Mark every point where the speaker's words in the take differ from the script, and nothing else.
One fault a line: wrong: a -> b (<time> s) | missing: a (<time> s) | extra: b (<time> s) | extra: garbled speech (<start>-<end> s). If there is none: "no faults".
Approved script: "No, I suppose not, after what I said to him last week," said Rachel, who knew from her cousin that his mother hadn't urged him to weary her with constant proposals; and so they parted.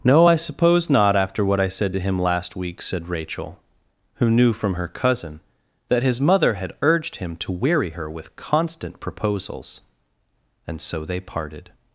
wrong: hadn't -> had (6.5 s)